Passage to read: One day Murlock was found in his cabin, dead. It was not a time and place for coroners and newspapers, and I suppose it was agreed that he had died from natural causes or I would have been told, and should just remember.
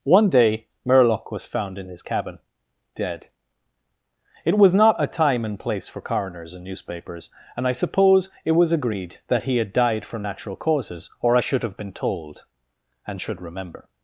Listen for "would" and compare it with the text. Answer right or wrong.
wrong